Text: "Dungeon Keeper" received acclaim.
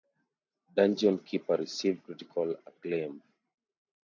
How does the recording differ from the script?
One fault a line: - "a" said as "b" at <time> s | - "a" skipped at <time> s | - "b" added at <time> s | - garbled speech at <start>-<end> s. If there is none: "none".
- "critical" added at 2.0 s